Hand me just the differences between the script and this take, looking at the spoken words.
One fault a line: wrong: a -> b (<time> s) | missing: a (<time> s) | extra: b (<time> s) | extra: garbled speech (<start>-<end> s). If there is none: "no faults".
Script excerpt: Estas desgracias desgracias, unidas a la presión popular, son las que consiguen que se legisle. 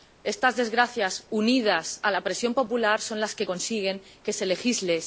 missing: desgracias (1.1 s)